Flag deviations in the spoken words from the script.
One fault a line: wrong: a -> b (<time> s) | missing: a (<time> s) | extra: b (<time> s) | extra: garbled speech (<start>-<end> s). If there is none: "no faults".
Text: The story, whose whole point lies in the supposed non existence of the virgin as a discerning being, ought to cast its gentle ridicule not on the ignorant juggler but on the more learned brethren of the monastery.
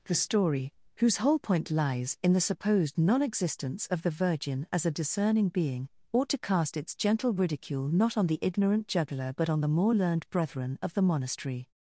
no faults